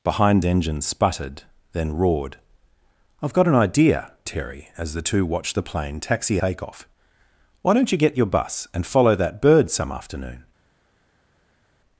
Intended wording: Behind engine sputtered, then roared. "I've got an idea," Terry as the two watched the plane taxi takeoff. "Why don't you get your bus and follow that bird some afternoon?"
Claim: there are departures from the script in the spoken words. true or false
false